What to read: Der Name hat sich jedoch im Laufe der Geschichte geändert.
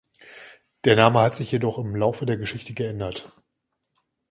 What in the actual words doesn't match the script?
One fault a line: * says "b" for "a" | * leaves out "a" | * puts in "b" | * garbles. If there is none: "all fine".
all fine